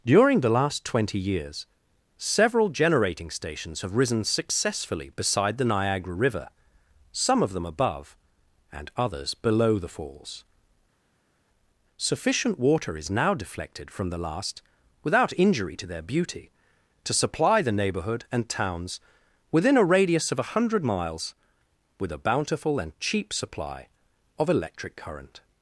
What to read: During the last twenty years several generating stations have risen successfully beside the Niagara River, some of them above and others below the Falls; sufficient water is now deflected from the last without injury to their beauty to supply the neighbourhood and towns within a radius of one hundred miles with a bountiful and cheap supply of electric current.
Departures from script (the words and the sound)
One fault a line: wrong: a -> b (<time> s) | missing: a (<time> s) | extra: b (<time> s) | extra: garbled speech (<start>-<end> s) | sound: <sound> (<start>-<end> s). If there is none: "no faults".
no faults